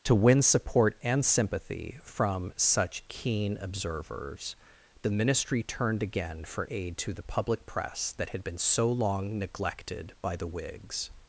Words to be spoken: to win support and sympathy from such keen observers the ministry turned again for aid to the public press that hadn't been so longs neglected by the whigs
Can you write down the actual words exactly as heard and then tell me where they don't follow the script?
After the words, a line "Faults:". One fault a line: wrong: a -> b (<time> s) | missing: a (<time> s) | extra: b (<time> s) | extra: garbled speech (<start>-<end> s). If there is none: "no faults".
to win support and sympathy from such keen observers the ministry turned again for aid to the public press that had been so long neglected by the whigs
Faults:
wrong: hadn't -> had (8.3 s)
wrong: longs -> long (8.9 s)